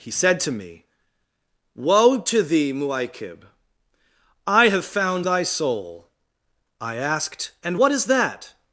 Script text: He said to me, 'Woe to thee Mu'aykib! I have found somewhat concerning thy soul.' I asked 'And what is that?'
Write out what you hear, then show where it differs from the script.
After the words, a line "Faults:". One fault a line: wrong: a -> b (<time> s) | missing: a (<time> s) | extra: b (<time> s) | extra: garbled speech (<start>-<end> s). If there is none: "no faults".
He said to me, 'Woe to thee Mu'aykib! I have found thy soul.' I asked 'And what is that?'
Faults:
missing: somewhat concerning (5.3 s)